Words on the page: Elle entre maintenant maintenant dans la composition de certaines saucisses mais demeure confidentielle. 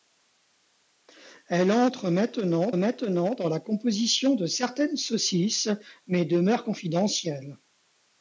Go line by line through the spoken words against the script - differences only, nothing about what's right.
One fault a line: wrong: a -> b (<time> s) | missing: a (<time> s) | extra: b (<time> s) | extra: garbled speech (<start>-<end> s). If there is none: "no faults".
no faults